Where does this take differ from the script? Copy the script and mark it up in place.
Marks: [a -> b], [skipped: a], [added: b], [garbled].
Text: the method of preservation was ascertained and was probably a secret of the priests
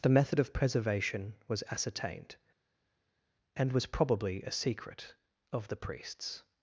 the method of preservation was ascertained and was probably a secret of the priests